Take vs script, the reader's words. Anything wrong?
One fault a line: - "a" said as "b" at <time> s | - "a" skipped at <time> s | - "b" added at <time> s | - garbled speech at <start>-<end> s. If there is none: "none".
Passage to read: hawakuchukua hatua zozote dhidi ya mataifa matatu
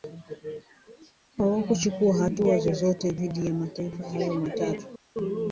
- "hayo" added at 4.1 s